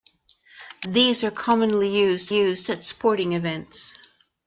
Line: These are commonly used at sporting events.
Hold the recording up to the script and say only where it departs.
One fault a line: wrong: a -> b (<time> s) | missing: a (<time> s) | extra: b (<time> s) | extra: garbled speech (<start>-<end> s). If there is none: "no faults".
extra: used (2.3 s)